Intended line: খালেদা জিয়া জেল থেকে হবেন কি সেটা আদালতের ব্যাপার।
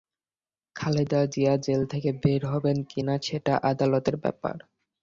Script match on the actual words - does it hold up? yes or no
no